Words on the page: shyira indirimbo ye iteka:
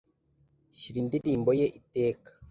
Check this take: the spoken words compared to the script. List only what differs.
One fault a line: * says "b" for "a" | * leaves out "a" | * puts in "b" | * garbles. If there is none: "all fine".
all fine